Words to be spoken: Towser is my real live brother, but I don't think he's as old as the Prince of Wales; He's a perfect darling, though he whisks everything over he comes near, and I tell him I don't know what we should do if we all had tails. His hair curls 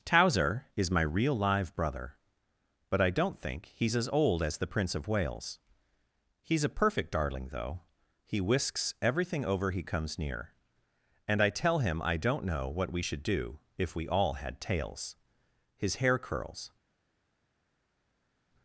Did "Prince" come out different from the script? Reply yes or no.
no